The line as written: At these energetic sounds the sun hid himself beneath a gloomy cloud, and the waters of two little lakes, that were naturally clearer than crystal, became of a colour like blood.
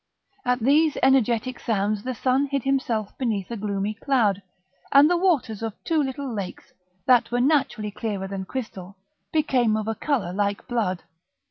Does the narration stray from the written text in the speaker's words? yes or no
no